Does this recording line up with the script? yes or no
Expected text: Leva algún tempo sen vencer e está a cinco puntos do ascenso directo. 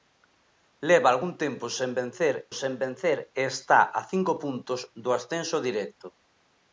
no